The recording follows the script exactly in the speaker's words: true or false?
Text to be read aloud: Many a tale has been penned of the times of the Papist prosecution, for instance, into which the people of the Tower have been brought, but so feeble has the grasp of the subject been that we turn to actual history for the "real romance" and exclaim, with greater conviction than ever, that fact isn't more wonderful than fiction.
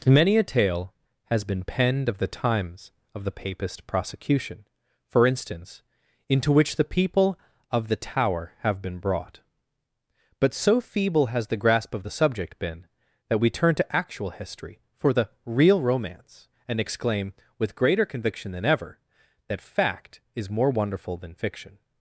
false